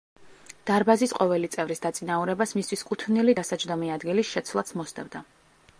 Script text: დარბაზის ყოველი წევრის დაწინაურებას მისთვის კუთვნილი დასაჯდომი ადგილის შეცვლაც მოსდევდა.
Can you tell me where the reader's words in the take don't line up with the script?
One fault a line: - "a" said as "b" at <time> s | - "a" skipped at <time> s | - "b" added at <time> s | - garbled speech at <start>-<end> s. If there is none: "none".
none